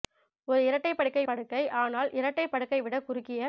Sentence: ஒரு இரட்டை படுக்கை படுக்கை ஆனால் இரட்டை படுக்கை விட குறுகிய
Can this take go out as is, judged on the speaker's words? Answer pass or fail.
pass